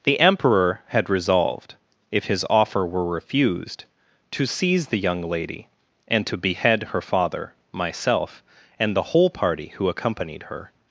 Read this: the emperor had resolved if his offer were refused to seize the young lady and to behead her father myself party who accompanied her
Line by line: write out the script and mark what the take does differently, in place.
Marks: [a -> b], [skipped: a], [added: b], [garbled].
the emperor had resolved if his offer were refused to seize the young lady and to behead her father myself [added: and the whole] party who accompanied her